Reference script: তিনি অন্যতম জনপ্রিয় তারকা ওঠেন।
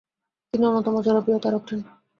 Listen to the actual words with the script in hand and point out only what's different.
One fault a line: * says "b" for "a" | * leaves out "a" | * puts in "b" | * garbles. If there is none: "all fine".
all fine